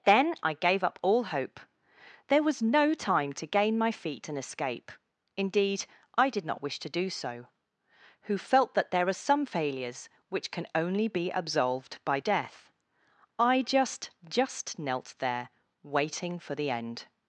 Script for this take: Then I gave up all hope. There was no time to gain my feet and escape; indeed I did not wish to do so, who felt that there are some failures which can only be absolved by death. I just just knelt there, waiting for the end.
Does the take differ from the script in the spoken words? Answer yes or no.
no